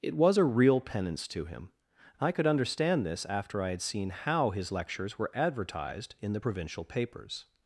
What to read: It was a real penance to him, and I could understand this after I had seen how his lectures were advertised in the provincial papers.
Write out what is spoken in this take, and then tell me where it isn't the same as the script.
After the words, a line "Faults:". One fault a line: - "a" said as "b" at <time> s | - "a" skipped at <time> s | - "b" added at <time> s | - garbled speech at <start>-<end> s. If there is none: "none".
It was a real penance to him, I could understand this after I had seen how his lectures were advertised in the provincial papers.
Faults:
- "and" skipped at 1.7 s